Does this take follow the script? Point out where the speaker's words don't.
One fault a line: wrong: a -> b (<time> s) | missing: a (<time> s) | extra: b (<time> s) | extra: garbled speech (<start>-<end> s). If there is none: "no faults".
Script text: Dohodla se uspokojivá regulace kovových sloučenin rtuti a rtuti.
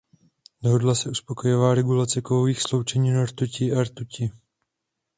no faults